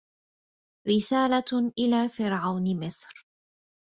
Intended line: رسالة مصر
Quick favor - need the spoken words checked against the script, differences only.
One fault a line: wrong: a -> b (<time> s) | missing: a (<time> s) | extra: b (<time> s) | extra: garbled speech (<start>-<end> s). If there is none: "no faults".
extra: إلى فرعون (1.8 s)